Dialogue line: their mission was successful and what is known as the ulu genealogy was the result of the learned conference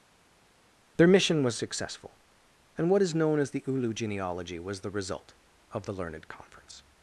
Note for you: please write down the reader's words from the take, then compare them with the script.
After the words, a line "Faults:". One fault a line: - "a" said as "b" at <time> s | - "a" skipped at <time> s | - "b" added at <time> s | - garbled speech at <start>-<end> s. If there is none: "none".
their mission was successful and what is known as the ulu genealogy was the result of the learned conference
Faults:
none